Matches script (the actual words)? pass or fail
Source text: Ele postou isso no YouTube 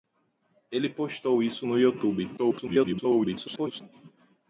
fail